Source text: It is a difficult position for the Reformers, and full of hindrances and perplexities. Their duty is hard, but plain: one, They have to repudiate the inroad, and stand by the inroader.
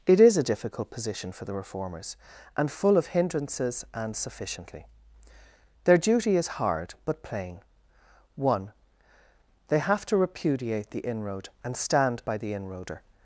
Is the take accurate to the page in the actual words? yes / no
no